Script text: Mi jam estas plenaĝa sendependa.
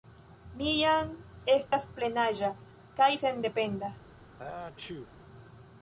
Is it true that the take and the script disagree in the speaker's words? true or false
true